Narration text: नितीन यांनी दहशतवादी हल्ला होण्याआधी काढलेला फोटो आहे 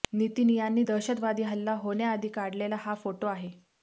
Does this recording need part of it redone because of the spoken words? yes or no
yes